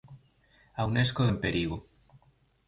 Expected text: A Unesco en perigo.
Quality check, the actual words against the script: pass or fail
pass